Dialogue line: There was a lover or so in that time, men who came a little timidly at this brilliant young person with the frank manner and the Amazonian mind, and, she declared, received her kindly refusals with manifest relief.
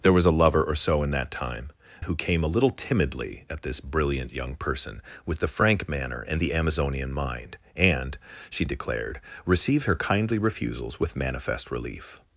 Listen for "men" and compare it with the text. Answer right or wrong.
wrong